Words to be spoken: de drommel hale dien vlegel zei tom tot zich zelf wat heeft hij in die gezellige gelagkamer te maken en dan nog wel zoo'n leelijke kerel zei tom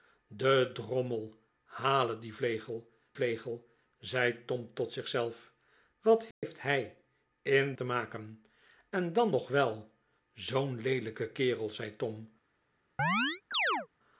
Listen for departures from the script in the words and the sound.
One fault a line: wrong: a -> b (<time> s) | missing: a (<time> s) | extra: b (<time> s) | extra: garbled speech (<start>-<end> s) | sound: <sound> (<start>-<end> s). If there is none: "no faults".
extra: vlegel (3.1 s)
sound: dropout (6.3-6.4 s)
missing: die gezellige gelagkamer (7.7 s)
sound: chirp (13.0-13.9 s)